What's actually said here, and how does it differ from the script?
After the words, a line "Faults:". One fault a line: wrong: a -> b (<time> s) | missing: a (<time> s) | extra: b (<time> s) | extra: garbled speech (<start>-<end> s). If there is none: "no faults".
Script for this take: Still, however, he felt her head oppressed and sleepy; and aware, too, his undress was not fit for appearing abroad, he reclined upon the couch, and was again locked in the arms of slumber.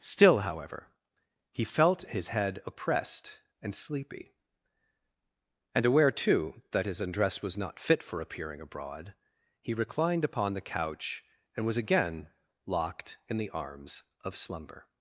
Still, however, he felt his head oppressed and sleepy; and aware, too, that his undress was not fit for appearing abroad, he reclined upon the couch, and was again locked in the arms of slumber.
Faults:
wrong: her -> his (2.0 s)
extra: that (6.7 s)